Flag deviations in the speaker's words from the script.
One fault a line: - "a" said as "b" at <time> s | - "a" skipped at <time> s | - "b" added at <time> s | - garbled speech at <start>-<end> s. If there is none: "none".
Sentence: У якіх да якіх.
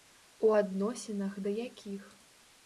- "якіх" said as "адносінах" at 0.6 s